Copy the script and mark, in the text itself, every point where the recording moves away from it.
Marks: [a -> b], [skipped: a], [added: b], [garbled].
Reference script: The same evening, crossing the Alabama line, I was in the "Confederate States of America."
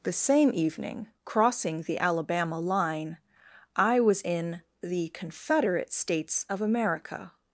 The same evening, crossing the Alabama line, I was in the "Confederate States of America."